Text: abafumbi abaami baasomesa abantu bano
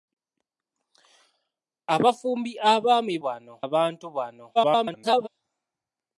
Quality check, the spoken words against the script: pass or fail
fail